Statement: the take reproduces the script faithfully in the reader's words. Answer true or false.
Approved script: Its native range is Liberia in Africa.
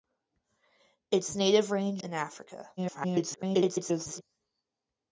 false